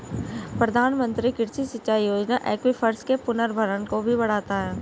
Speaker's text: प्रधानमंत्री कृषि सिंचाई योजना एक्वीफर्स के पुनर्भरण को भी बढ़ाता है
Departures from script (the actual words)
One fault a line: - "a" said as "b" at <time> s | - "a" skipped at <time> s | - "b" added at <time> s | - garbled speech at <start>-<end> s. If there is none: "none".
none